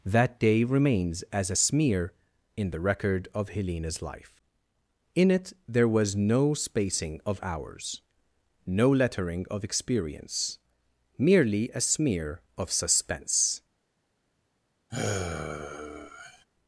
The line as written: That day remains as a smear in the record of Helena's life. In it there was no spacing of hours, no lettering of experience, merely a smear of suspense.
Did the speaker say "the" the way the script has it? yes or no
yes